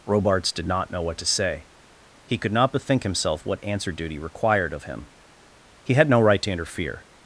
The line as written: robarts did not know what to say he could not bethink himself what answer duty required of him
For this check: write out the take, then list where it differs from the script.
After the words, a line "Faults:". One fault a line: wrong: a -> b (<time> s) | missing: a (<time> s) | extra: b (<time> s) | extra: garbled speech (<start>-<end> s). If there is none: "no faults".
robarts did not know what to say he could not bethink himself what answer duty required of him he had no right to interfere
Faults:
extra: he had no right to interfere (5.8 s)